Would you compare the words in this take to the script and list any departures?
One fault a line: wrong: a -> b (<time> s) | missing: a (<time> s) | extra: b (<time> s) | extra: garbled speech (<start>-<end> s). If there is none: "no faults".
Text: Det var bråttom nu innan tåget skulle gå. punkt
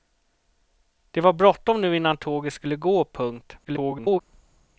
extra: garbled speech (3.6-4.2 s)